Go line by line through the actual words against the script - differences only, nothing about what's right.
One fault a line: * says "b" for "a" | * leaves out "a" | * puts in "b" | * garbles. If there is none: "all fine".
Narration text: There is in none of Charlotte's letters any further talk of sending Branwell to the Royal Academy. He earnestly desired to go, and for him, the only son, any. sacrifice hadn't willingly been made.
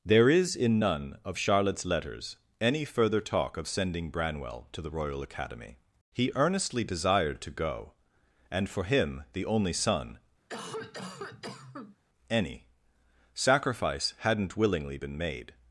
all fine